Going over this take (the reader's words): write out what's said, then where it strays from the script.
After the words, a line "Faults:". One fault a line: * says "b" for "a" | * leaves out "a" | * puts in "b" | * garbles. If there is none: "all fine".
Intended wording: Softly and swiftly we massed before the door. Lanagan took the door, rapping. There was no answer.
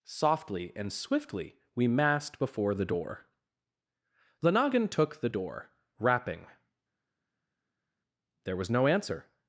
Softly and swiftly we massed before the door. Lanagan took the door, rapping. There was no answer.
Faults:
all fine